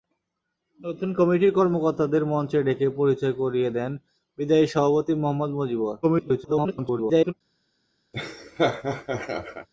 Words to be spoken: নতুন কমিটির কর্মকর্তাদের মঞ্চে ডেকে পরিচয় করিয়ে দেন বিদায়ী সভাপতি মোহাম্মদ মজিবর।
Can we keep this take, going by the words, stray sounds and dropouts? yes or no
no